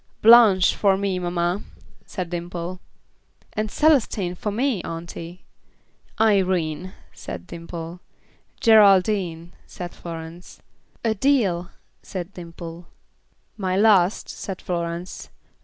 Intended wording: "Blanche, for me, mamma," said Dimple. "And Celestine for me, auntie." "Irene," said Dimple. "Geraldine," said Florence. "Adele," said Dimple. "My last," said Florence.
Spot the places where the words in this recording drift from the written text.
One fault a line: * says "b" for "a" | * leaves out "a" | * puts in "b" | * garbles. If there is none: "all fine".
all fine